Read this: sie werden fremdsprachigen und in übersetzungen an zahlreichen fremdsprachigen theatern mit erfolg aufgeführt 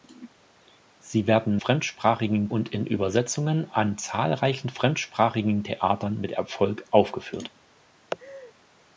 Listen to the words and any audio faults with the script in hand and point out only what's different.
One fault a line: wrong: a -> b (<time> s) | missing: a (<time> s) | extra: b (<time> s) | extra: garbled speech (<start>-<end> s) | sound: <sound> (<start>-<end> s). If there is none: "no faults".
sound: laugh (8.1-8.5 s)